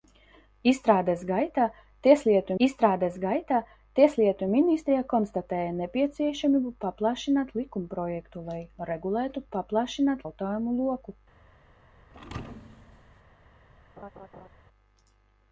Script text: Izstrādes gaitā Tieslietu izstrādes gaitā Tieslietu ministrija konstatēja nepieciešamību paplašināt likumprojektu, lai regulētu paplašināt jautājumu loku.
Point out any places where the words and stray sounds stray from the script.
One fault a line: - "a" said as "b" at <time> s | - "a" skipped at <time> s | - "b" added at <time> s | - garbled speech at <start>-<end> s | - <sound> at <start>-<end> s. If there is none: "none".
- thud at 12.1-13.2 s
- laugh at 14.0-14.5 s